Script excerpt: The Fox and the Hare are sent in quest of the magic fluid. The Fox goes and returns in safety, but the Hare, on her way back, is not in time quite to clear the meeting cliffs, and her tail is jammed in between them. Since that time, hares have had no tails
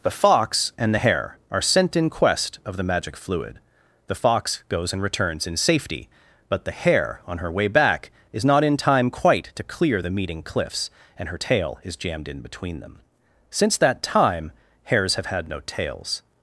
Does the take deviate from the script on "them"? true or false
false